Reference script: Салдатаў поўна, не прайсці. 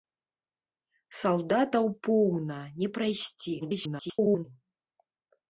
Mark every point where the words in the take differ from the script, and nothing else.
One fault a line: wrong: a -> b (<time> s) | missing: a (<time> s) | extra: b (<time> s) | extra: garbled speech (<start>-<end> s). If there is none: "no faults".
extra: garbled speech (3.6-4.5 s)